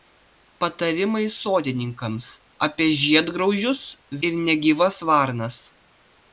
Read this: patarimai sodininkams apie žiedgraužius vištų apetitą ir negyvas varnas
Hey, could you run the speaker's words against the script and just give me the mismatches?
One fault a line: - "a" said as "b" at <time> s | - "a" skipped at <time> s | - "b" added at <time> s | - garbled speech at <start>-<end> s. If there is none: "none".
- "vištų apetitą" skipped at 3.8 s